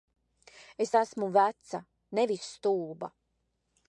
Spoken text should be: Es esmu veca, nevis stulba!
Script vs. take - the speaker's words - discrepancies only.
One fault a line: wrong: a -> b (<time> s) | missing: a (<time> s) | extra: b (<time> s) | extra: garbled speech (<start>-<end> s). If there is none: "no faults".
no faults